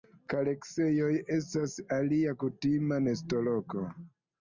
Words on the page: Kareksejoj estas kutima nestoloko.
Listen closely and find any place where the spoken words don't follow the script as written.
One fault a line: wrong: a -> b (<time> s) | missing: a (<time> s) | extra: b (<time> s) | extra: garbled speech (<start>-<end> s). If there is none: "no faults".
extra: alia (2.0 s)